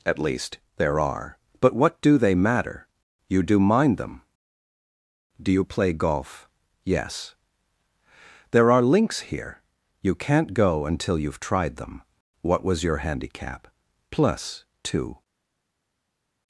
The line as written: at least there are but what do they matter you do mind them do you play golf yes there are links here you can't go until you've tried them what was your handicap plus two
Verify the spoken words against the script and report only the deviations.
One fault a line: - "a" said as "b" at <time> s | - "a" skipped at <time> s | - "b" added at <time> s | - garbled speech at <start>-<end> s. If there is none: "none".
none